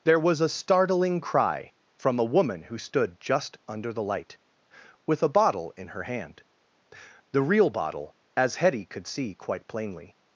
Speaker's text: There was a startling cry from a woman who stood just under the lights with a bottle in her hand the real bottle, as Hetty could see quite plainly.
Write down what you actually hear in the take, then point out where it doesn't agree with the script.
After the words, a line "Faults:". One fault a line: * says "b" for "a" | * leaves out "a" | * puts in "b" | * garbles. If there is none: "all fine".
There was a startling cry from a woman who stood just under the light with a bottle in her hand the real bottle, as Hetty could see quite plainly.
Faults:
* says "light" for "lights"